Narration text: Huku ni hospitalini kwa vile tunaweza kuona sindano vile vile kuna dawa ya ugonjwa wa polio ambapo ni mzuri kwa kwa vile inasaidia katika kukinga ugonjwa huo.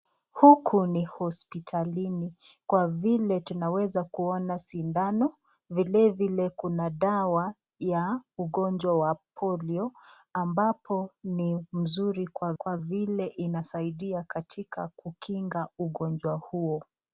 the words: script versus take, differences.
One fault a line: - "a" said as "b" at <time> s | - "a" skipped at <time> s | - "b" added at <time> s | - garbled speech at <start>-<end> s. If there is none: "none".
none